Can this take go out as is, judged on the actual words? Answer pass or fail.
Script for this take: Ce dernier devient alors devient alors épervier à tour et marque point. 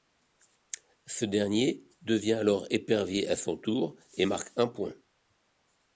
fail